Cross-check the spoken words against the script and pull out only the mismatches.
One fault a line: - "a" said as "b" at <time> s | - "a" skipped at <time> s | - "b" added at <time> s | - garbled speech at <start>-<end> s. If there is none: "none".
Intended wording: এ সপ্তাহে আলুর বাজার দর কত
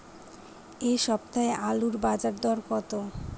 none